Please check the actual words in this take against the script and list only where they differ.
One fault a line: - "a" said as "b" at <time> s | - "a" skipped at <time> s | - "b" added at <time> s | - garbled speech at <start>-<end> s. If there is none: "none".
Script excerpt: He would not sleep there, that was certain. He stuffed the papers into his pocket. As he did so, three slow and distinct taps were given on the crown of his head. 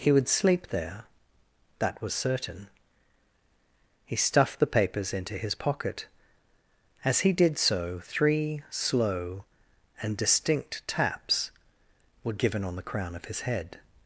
- "not" skipped at 0.3 s